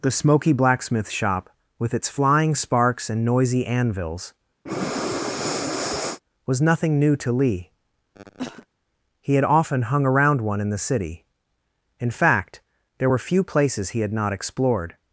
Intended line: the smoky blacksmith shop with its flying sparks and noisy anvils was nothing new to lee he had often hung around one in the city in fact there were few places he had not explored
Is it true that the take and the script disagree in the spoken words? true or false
false